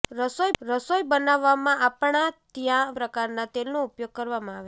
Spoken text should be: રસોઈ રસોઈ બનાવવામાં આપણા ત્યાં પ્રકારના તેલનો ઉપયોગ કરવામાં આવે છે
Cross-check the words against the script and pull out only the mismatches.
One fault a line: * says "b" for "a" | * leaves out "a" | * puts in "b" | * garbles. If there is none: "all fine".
all fine